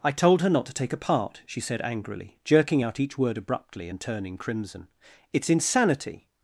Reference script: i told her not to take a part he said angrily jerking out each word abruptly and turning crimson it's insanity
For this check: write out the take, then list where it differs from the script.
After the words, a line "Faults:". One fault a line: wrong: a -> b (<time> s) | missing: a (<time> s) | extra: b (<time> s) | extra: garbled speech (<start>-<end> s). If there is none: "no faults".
i told her not to take a part she said angrily jerking out each word abruptly and turning crimson it's insanity
Faults:
wrong: he -> she (1.4 s)